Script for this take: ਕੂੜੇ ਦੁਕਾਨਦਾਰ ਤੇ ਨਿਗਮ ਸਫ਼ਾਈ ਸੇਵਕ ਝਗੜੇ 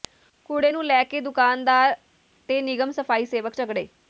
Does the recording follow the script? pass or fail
fail